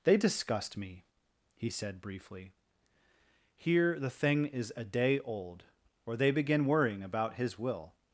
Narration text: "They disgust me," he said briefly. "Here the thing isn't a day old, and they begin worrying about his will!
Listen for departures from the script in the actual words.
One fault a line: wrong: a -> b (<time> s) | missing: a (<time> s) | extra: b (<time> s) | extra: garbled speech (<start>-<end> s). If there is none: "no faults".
wrong: isn't -> is (4.5 s)
wrong: and -> or (6.1 s)